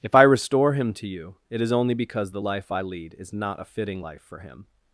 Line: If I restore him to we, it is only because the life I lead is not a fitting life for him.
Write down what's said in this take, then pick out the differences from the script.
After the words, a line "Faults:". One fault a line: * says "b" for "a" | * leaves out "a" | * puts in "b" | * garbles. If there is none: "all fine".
If I restore him to you, it is only because the life I lead is not a fitting life for him.
Faults:
* says "you" for "we"